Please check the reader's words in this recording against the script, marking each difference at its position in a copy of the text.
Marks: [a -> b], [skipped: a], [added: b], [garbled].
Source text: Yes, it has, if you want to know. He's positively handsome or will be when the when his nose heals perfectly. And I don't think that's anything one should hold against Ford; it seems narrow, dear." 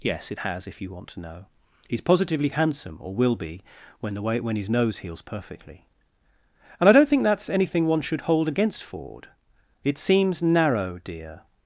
Yes, it has, if you want to know. He's positively handsome or will be when the [added: way] when his nose heals perfectly. And I don't think that's anything one should hold against Ford; it seems narrow, dear."